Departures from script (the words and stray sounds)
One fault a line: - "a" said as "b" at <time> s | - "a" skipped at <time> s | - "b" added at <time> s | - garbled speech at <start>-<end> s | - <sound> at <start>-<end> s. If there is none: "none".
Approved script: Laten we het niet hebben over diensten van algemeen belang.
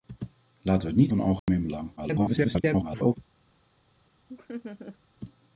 - "hebben over diensten" skipped at 1.1 s
- dropout at 1.4-1.5 s
- garbled speech at 2.0-3.2 s
- laugh at 4.3-5.0 s